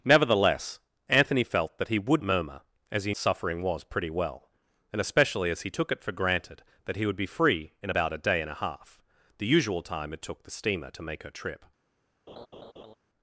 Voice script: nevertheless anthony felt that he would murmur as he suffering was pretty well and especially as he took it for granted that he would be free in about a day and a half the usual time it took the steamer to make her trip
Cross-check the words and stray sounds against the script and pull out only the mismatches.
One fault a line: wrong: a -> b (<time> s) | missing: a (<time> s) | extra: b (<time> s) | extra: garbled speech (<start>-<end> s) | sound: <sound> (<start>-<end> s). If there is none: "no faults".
sound: laugh (12.3-12.9 s)